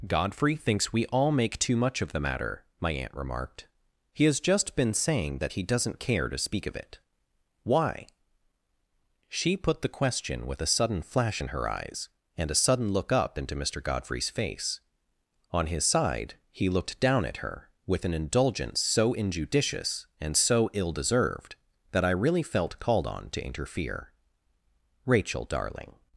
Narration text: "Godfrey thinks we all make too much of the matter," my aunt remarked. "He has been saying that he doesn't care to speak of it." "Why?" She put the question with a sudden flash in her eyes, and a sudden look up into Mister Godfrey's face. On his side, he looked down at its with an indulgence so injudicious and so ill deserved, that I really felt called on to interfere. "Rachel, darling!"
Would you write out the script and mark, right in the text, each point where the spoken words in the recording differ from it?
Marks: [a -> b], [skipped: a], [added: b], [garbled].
"Godfrey thinks we all make too much of the matter," my aunt remarked. "He has [added: just] been saying that he doesn't care to speak of it." "Why?" She put the question with a sudden flash in her eyes, and a sudden look up into Mister Godfrey's face. On his side, he looked down at [its -> her] with an indulgence so injudicious and so ill deserved, that I really felt called on to interfere. "Rachel, darling!"